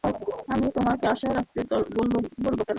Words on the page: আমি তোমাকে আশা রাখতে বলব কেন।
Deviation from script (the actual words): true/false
false